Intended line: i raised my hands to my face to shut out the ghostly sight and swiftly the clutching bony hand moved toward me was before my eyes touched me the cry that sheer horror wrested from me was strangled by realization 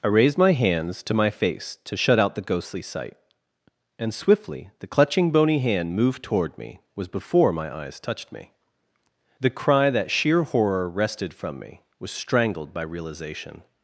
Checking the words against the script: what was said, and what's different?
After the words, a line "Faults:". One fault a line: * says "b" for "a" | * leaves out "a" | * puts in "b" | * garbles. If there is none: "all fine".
i raised my hands to my face to shut out the ghostly sight and swiftly the clutching bony hand moved toward me was before my eyes touched me the cry that sheer horror wrested from me was strangled by realization
Faults:
all fine